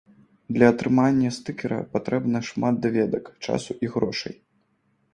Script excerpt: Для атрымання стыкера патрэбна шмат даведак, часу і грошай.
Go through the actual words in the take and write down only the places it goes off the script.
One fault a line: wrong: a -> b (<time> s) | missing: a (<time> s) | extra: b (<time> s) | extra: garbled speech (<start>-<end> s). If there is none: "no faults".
no faults